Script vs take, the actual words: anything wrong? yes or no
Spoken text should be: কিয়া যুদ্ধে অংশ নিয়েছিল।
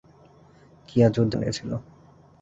yes